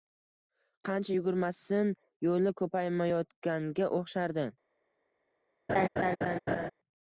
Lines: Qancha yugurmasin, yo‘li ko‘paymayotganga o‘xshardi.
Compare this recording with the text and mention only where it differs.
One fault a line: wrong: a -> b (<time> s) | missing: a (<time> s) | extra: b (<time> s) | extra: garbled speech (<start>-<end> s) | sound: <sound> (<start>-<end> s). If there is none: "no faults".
sound: laugh (5.7-6.7 s)